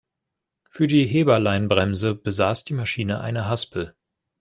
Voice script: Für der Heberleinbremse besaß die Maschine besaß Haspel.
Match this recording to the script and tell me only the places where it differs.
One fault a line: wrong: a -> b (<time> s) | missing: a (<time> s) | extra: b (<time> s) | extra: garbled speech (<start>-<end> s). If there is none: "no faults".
wrong: der -> die (0.9 s)
wrong: besaß -> eine (3.2 s)